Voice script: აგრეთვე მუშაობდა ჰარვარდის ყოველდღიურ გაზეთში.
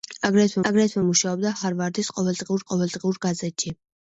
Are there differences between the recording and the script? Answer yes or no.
yes